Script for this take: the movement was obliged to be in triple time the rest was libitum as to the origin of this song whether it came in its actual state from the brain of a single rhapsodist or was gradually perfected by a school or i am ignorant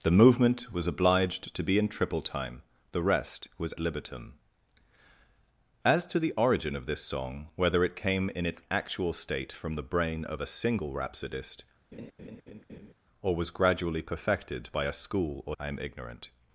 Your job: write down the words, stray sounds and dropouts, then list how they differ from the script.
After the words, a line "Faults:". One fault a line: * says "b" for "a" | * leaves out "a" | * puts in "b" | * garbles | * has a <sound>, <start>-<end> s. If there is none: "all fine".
the movement was obliged to be in triple time the rest was libitum as to the origin of this song whether it came in its actual state from the brain of a single rhapsodist or was gradually perfected by a school or i am ignorant
Faults:
* has a laugh, 11.9-12.9 s